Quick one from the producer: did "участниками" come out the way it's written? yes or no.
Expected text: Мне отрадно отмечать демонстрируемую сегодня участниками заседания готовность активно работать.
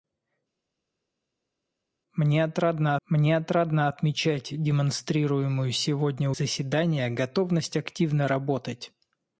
no